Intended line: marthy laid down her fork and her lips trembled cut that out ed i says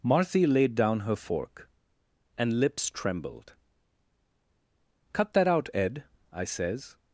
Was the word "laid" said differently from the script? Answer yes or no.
no